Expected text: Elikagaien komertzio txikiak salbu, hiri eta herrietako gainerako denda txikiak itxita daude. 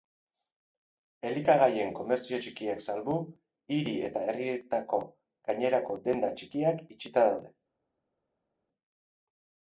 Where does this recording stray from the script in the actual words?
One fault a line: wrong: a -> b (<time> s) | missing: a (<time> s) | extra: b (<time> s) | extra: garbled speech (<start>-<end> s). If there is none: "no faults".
no faults